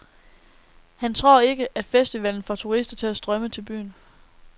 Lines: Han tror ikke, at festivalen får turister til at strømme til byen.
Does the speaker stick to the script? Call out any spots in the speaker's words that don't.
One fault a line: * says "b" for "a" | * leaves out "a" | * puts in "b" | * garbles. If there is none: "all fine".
all fine